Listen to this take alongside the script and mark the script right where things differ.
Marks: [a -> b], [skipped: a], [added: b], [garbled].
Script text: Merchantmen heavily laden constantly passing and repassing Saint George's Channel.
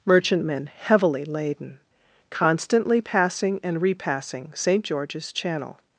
Merchantmen heavily laden constantly passing and repassing Saint George's Channel.